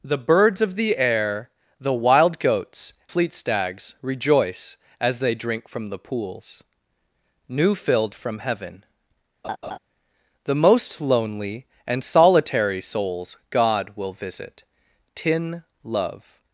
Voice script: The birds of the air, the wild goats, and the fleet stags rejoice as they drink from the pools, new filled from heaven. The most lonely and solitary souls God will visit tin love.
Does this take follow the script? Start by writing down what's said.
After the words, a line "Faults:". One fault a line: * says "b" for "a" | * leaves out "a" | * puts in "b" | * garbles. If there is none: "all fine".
The birds of the air, the wild goats, fleet stags rejoice as they drink from the pools, new filled from heaven. The most lonely and solitary souls God will visit tin love.
Faults:
* leaves out "and the"